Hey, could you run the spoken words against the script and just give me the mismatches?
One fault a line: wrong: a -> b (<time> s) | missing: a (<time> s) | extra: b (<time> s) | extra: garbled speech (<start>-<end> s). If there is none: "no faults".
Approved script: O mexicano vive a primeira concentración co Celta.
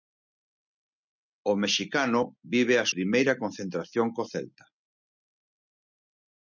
no faults